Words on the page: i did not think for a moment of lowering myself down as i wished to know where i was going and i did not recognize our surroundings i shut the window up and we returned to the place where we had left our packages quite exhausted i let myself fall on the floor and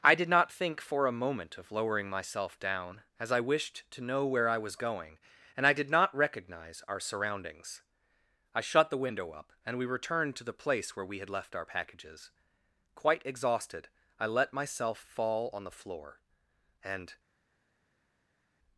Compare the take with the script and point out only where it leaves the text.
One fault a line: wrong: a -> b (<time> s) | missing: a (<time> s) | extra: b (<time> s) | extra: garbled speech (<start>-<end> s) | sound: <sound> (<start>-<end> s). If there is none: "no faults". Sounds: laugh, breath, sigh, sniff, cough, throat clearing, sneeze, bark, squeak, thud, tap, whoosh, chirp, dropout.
no faults